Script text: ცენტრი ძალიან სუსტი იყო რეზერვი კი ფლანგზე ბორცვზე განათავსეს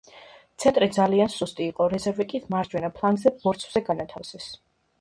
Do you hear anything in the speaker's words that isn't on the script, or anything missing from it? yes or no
yes